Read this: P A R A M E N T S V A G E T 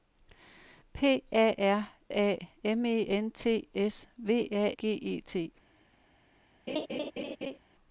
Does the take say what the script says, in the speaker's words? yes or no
yes